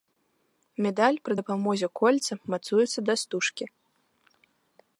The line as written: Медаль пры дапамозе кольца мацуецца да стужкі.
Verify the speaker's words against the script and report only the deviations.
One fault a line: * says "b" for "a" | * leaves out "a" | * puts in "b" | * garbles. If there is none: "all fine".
all fine